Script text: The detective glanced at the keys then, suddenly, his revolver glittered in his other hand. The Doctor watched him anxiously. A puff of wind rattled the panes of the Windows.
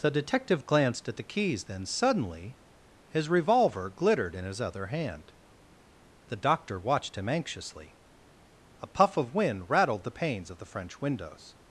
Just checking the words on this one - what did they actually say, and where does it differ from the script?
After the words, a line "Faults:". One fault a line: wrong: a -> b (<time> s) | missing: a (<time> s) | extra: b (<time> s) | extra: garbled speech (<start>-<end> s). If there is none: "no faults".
The detective glanced at the keys then, suddenly, his revolver glittered in his other hand. The Doctor watched him anxiously. A puff of wind rattled the panes of the French windows.
Faults:
extra: French (10.7 s)